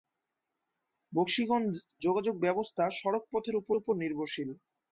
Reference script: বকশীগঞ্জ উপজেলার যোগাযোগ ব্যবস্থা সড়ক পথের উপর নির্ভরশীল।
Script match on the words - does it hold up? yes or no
no